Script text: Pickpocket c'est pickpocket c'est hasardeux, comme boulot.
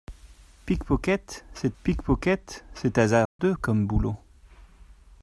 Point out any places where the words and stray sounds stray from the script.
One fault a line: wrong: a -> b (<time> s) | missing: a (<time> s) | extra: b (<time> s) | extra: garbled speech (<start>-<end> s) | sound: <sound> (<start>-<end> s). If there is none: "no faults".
sound: dropout (3.3-3.4 s)